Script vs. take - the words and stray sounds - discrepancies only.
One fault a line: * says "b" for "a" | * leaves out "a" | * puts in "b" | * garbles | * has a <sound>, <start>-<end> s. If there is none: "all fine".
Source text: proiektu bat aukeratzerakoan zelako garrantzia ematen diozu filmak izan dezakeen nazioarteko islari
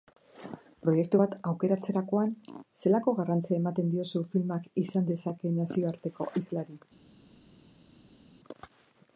all fine